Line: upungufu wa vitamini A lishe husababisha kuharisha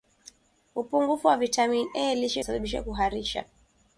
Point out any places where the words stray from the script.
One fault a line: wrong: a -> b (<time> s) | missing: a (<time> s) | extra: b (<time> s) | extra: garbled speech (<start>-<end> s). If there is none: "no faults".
no faults